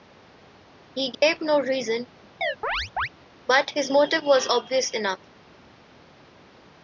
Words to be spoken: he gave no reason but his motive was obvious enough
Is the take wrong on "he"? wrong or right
right